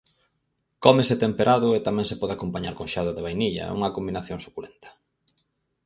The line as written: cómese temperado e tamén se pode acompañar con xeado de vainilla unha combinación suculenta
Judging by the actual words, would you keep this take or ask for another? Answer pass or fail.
pass